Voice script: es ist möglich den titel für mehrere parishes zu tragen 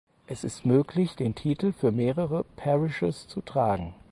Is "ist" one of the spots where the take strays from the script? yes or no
no